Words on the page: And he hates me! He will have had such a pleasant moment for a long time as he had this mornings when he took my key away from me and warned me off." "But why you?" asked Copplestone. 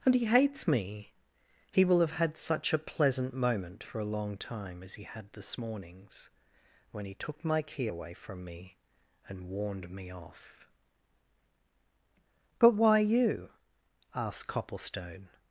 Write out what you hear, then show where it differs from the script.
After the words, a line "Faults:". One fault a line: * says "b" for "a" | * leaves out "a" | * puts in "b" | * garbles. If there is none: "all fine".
And he hates me! He will have had such a pleasant moment for a long time as he had this mornings when he took my key away from me and warned me off." "But why you?" asked Copplestone.
Faults:
all fine